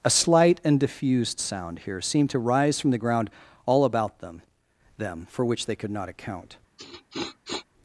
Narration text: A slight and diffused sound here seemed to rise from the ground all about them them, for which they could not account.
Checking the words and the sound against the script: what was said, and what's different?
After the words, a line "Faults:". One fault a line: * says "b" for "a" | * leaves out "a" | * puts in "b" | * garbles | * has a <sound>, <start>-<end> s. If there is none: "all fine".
A slight and diffused sound here seemed to rise from the ground all about them them, for which they could not account.
Faults:
* has a sniff, 6.8-7.7 s